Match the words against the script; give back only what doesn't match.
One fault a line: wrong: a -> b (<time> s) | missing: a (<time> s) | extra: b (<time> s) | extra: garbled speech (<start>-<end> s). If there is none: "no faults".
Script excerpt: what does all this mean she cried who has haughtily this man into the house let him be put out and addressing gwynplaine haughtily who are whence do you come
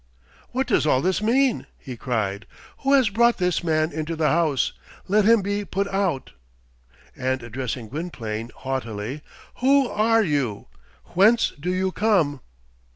wrong: she -> he (1.8 s)
wrong: haughtily -> brought (3.1 s)
extra: you (10.2 s)